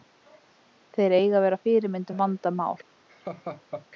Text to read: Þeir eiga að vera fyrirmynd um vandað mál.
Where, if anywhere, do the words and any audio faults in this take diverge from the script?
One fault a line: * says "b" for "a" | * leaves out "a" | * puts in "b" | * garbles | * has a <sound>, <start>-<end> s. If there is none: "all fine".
* has a laugh, 3.1-3.9 s